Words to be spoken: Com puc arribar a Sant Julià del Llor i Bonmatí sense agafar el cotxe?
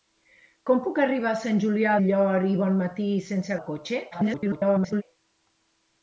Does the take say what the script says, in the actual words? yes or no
no